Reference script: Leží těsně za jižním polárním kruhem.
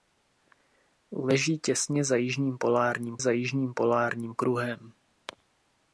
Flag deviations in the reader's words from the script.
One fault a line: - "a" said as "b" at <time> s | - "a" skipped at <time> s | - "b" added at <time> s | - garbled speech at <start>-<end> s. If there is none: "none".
- "za jižním polárním" added at 3.2 s